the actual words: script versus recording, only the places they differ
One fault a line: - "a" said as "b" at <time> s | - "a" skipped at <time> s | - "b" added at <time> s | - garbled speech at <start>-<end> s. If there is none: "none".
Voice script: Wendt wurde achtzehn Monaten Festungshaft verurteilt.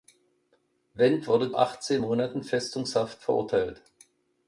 none